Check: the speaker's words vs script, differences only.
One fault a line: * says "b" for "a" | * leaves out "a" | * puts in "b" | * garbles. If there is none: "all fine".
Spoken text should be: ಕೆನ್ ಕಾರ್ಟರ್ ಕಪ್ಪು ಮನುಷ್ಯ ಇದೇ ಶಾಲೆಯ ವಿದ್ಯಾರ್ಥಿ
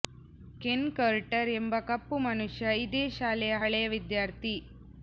* puts in "ಎಂಬ"
* puts in "ಹಳೆಯ"